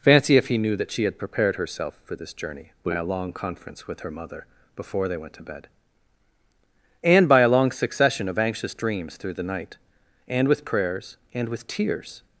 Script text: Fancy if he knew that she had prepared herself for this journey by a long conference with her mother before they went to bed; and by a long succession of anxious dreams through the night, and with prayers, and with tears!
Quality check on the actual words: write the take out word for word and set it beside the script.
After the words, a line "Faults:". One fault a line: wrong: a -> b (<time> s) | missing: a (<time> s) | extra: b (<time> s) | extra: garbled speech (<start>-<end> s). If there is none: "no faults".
Fancy if he knew that she had prepared herself for this journey by a long conference with her mother before they went to bed; and by a long succession of anxious dreams through the night, and with prayers, and with tears!
Faults:
no faults